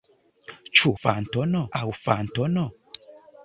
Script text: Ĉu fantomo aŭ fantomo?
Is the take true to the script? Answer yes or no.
yes